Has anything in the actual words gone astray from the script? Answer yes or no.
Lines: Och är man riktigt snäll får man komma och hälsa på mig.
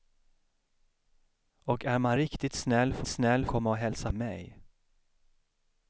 yes